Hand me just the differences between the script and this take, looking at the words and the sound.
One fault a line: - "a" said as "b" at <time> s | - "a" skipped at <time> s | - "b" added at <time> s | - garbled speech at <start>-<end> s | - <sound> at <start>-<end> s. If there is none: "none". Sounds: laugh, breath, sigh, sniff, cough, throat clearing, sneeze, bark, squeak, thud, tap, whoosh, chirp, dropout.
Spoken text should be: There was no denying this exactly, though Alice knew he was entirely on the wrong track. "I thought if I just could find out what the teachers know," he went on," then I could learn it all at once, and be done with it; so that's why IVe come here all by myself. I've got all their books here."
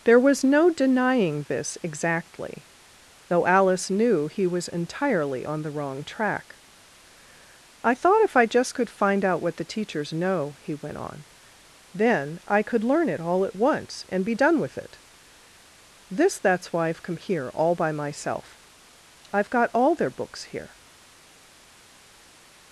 - "so" said as "this" at 16.1 s